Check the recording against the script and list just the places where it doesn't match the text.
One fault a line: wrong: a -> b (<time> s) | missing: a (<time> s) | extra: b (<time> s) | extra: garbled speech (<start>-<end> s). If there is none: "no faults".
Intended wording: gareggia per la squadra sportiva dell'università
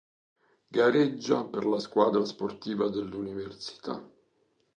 no faults